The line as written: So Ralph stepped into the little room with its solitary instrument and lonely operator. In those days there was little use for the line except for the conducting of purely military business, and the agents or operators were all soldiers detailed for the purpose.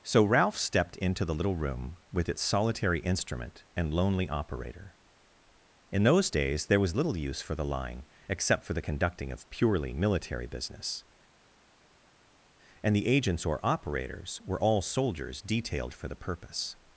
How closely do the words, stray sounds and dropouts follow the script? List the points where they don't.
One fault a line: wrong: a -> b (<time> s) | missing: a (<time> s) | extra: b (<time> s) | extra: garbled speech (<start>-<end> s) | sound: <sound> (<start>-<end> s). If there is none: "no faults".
no faults